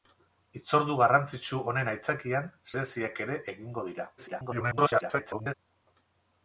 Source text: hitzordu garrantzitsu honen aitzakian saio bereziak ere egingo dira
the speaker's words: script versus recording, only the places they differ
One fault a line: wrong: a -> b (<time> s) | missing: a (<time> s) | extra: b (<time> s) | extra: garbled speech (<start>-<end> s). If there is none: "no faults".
missing: saio (2.5 s)
extra: garbled speech (4.2-5.5 s)